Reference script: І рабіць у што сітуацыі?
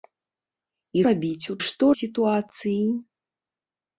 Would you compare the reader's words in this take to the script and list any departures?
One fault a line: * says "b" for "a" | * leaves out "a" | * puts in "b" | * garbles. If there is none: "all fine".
all fine